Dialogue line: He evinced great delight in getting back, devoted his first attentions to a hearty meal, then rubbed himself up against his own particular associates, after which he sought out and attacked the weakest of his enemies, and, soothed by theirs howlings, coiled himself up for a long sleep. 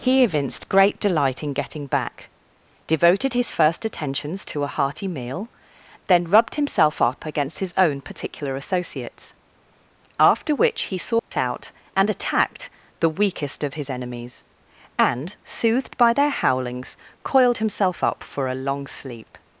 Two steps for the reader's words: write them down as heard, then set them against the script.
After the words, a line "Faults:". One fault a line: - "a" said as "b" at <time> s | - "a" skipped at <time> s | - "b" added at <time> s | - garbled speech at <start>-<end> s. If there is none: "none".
He evinced great delight in getting back, devoted his first attentions to a hearty meal, then rubbed himself up against his own particular associates, after which he sought out and attacked the weakest of his enemies, and, soothed by their howlings, coiled himself up for a long sleep.
Faults:
- "theirs" said as "their" at 16.1 s